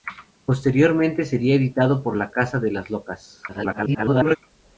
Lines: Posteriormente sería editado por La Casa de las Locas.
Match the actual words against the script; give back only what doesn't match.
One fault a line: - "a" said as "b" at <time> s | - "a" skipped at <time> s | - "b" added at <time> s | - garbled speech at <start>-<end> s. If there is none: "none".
- garbled speech at 3.5-4.4 s